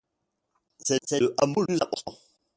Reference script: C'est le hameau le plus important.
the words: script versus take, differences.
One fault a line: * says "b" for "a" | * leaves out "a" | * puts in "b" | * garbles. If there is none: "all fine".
* puts in "c'est"
* leaves out "le"